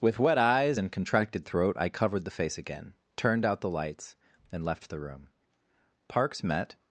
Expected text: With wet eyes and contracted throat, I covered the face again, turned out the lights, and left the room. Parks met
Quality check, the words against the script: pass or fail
pass